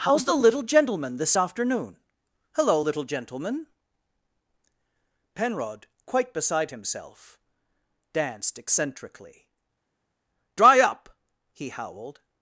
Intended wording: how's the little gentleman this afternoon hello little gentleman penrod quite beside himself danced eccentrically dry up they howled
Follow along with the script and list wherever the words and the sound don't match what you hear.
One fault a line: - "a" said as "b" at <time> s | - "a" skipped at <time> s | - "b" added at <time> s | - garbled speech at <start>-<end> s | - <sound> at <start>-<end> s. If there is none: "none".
- "they" said as "he" at 11.5 s